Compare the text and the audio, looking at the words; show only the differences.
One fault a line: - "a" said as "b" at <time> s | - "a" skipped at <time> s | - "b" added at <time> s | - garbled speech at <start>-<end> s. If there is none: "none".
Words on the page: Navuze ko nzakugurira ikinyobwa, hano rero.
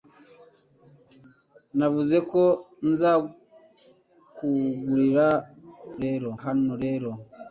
- "ikinyobwa" said as "rero" at 6.0 s